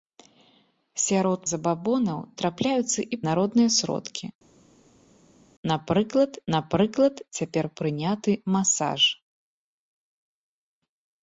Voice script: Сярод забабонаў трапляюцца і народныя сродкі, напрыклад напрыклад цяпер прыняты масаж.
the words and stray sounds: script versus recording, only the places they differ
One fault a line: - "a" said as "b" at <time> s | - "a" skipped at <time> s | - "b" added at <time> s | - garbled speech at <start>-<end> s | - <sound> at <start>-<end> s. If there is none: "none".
none